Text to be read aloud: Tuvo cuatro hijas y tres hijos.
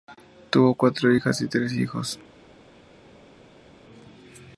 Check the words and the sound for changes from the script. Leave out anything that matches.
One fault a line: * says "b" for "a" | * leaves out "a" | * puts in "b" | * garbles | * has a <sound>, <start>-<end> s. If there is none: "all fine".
all fine